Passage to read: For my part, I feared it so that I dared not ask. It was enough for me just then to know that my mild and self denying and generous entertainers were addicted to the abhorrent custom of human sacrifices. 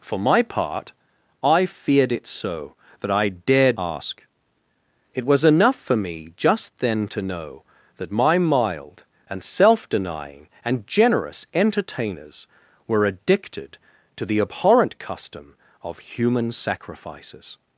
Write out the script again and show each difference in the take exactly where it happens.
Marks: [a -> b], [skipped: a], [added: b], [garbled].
For my part, I feared it so that I dared [skipped: not] ask. It was enough for me just then to know that my mild and self denying and generous entertainers were addicted to the abhorrent custom of human sacrifices.